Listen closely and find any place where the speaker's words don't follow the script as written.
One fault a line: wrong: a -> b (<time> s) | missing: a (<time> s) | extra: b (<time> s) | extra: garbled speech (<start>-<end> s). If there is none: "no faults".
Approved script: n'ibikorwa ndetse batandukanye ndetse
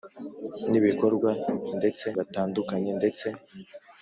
no faults